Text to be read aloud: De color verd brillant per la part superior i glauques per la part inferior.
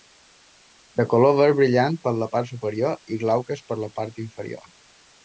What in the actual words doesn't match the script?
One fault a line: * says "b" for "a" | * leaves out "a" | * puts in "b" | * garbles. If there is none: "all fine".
all fine